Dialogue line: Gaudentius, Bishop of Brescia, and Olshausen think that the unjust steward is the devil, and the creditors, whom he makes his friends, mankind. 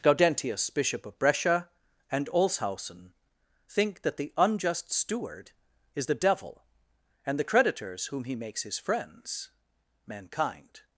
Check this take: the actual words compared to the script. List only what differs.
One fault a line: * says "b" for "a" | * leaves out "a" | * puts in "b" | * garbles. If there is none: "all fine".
all fine